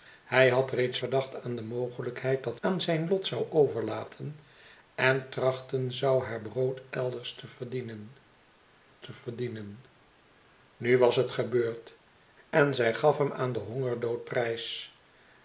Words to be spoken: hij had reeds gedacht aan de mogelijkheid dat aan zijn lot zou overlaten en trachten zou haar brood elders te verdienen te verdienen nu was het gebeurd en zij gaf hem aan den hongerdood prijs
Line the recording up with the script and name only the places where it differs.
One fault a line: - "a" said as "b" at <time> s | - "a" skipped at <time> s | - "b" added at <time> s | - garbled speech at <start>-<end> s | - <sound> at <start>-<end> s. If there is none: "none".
none